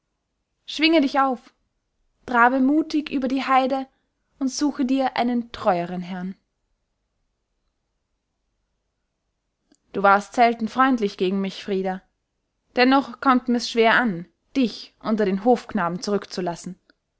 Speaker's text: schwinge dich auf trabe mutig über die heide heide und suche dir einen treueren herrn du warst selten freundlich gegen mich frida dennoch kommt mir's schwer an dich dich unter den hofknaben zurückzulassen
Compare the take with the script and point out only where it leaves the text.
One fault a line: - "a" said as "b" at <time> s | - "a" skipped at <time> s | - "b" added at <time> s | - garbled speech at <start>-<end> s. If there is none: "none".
- "heide" skipped at 3.9 s
- "dich" skipped at 14.9 s